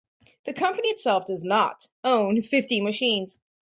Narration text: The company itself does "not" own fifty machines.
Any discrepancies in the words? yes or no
no